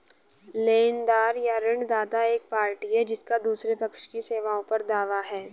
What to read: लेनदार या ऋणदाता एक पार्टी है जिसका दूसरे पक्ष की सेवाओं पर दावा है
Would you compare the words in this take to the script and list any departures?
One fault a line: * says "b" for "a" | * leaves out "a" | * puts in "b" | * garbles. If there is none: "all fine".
all fine